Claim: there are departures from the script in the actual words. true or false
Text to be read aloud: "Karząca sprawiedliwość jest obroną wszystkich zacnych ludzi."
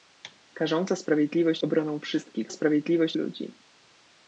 true